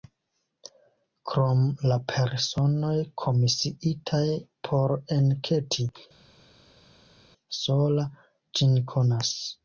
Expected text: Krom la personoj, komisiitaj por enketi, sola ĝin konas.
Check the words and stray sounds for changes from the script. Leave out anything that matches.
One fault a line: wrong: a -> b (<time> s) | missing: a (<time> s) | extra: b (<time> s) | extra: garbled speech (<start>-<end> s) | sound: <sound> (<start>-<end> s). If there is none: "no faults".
no faults